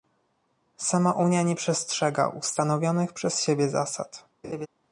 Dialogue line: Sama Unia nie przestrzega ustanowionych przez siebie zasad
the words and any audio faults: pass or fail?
fail